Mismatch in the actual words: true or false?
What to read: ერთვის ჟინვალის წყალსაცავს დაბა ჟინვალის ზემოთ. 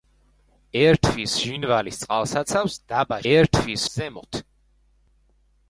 true